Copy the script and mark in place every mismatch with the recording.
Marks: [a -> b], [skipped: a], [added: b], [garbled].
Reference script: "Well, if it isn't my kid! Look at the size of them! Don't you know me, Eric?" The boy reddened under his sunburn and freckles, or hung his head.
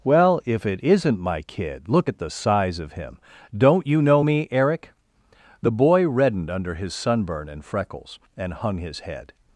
"Well, if it isn't my kid! Look at the size of [them! -> him] Don't you know me, Eric?" The boy reddened under his sunburn and freckles, [or -> and] hung his head.